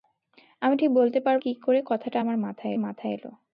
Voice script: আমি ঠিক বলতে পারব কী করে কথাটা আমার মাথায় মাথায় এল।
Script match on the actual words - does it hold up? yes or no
yes